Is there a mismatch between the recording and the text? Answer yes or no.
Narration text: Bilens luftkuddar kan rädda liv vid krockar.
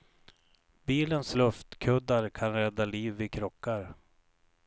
no